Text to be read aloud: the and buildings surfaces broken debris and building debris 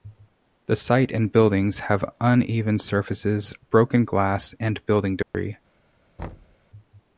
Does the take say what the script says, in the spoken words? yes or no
no